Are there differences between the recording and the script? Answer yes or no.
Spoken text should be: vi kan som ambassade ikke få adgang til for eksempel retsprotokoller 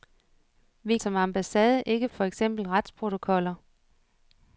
yes